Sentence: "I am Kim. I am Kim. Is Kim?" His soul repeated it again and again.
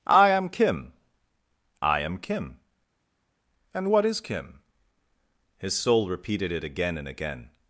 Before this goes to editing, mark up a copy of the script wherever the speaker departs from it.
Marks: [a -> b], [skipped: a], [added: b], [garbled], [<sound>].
"I am Kim. I am Kim. [added: And what] Is Kim?" His soul repeated it again and again.